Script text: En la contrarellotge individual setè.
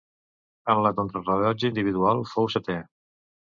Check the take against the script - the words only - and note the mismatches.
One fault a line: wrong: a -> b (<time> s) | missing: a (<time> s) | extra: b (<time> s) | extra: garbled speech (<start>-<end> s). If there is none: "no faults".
extra: fou (2.3 s)